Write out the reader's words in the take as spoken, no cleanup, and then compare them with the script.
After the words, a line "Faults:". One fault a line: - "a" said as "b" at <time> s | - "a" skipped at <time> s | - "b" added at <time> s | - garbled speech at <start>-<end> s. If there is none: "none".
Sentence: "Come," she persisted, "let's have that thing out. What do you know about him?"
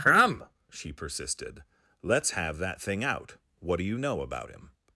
"Come," she persisted, "let's have that thing out. What do you know about him?"
Faults:
none